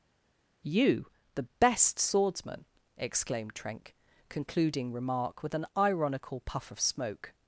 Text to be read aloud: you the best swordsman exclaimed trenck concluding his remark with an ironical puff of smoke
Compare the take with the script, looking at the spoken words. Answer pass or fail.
fail